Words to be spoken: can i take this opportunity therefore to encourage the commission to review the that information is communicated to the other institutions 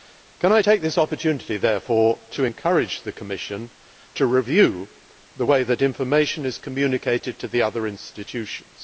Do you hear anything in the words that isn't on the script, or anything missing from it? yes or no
yes